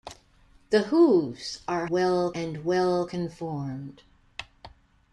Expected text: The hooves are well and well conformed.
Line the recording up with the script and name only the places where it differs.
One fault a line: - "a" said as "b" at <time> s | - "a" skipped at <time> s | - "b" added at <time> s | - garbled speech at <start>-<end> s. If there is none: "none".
none